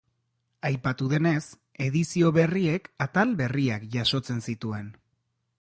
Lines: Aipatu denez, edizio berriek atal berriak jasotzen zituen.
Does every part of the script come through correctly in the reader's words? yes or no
yes